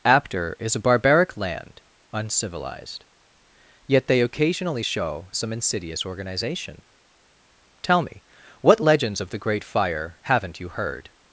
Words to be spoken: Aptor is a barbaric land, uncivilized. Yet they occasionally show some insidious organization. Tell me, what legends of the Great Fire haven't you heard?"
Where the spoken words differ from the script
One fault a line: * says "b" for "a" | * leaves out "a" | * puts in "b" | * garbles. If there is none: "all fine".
all fine